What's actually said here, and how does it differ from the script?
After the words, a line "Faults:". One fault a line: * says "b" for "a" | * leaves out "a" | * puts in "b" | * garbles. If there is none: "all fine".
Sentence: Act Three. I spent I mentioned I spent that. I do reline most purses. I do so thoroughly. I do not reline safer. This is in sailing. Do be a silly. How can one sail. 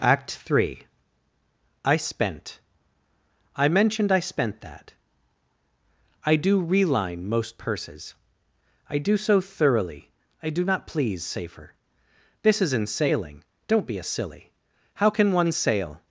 Act Three. I spent I mentioned I spent that. I do reline most purses. I do so thoroughly. I do not please safer. This is in sailing. Don't be a silly. How can one sail.
Faults:
* says "please" for "reline"
* says "Don't" for "Do"